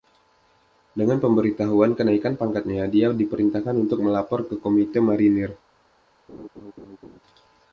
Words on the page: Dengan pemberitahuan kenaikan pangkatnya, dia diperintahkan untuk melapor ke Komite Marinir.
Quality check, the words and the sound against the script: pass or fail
fail